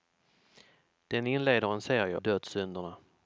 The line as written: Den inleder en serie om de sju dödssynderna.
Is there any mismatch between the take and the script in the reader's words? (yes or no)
yes